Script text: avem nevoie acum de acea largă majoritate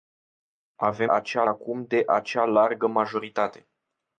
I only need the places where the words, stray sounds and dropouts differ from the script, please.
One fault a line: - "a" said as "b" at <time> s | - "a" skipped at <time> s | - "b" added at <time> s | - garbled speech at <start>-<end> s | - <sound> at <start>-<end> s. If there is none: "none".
- "nevoie" said as "acea" at 1.1 s